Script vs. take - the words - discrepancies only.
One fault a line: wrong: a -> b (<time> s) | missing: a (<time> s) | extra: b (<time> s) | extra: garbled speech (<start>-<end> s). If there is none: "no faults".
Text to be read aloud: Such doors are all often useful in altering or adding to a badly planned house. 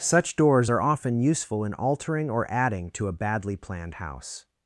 missing: all (0.8 s)